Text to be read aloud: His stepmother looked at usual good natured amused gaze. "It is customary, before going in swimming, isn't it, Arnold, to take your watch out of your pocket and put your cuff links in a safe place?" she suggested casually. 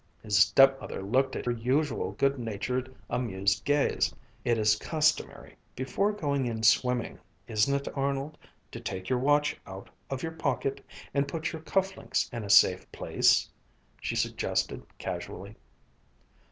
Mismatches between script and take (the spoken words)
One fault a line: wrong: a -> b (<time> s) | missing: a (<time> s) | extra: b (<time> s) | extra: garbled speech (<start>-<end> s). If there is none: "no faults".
no faults